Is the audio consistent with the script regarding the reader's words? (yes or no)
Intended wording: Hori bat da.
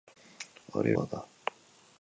yes